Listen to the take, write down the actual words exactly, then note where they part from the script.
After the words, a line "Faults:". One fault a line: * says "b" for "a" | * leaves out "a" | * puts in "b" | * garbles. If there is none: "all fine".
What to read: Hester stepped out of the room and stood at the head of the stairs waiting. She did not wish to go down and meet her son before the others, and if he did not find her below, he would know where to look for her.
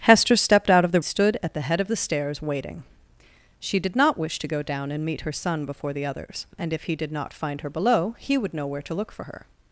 Hester stepped out of the stood at the head of the stairs waiting. She did not wish to go down and meet her son before the others, and if he did not find her below, he would know where to look for her.
Faults:
* leaves out "room and"